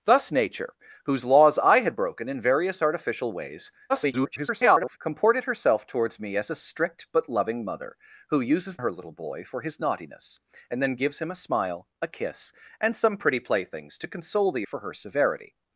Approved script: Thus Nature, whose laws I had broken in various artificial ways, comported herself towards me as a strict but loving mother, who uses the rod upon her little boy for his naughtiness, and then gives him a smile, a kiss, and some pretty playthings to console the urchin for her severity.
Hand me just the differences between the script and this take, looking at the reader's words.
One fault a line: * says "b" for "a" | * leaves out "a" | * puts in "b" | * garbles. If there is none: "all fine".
* garbles
* leaves out "the rod upon"
* leaves out "urchin"